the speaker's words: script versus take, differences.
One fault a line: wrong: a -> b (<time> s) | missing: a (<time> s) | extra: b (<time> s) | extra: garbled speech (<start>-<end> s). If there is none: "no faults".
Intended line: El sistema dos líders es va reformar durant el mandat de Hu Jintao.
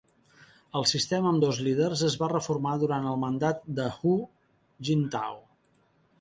extra: amb (1.3 s)